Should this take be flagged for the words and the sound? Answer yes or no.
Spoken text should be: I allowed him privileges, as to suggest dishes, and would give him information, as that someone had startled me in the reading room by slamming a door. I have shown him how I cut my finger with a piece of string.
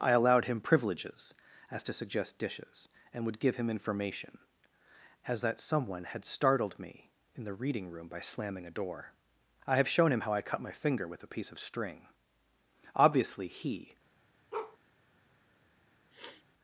yes